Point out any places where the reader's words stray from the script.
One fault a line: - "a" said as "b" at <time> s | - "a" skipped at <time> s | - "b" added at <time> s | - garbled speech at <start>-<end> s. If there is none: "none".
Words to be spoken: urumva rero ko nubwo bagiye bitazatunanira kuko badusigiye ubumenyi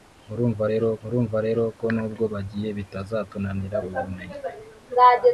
- "urumva rero" added at 1.0 s
- "kuko badusigiye" skipped at 3.8 s